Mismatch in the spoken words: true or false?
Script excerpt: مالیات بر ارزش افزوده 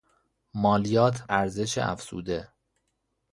true